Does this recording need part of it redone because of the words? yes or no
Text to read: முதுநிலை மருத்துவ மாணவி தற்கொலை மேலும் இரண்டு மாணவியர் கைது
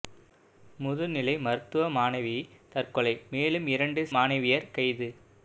no